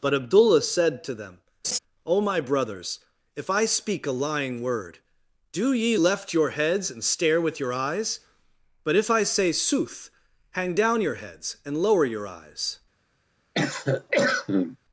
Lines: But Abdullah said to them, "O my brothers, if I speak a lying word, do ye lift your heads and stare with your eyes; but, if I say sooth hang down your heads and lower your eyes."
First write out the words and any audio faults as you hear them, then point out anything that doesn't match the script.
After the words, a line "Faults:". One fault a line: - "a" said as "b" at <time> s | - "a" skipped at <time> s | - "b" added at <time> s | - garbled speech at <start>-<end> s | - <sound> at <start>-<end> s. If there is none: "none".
But Abdullah said to them, "O my brothers, if I speak a lying word, do ye left your heads and stare with your eyes; but, if I say sooth hang down your heads and lower your eyes."
Faults:
- laugh at 1.6-1.8 s
- "lift" said as "left" at 5.9 s
- cough at 13.5-14.8 s